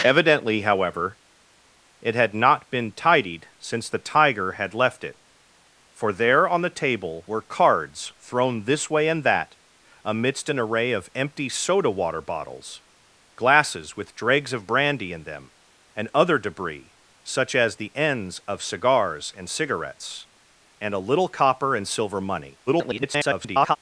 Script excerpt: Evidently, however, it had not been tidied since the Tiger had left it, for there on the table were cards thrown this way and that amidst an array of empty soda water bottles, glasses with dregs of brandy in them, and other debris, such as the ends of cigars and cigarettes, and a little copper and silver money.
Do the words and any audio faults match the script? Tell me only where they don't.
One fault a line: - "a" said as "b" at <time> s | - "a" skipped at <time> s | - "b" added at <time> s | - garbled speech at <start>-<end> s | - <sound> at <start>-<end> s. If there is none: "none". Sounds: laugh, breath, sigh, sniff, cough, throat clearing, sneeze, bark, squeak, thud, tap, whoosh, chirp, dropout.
- garbled speech at 22.7-23.8 s